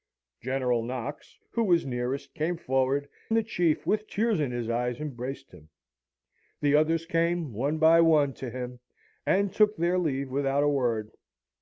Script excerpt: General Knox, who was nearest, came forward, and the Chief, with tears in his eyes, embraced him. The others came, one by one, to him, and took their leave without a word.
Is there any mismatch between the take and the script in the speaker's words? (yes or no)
yes